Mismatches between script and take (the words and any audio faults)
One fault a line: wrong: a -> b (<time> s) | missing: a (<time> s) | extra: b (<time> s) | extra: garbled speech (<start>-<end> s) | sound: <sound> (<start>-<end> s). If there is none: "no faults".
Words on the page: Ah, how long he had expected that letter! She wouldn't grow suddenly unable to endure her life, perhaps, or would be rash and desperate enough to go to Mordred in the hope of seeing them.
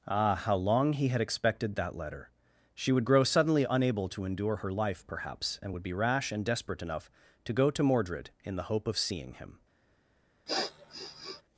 wrong: wouldn't -> would (2.9 s)
wrong: or -> and (5.6 s)
wrong: them -> him (9.3 s)
sound: sniff (10.5-11.4 s)